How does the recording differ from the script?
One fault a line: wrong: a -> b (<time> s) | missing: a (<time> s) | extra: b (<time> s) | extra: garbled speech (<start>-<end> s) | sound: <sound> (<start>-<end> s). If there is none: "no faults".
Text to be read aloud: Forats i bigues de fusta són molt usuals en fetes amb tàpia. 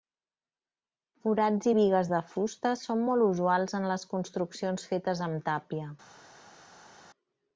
extra: les construccions (3.9 s)